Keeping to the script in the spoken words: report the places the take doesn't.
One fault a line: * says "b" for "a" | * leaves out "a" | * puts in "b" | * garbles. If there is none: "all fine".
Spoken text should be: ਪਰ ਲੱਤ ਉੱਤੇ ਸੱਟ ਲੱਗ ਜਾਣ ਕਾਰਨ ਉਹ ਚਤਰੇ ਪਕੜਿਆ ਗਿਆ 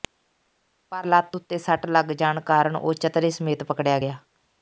* puts in "ਸਮੇਤ"